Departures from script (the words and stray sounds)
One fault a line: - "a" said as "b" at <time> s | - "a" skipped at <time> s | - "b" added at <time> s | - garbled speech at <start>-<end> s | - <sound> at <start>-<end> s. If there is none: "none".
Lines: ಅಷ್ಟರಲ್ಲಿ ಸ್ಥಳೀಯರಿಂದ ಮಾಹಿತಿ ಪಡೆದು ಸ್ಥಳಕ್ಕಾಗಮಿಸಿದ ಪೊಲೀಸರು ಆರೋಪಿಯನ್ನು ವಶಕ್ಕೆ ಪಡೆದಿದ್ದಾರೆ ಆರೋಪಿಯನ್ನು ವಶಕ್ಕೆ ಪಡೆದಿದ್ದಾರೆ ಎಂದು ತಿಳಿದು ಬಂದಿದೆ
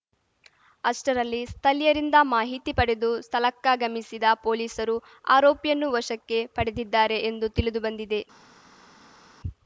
- "ಆರೋಪಿಯನ್ನು ವಶಕ್ಕೆ ಪಡೆದಿದ್ದಾರೆ" skipped at 7.2 s